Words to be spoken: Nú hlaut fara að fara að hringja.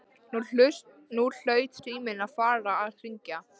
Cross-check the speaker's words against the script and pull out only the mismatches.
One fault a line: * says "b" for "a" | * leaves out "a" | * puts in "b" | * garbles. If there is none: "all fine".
* says "síminn" for "fara"